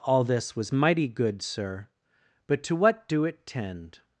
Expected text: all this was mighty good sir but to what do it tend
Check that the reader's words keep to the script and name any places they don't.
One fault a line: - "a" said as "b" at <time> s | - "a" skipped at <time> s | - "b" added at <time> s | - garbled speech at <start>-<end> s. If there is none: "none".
none